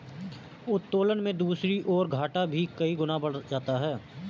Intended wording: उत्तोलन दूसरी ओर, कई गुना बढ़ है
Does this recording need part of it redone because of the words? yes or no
yes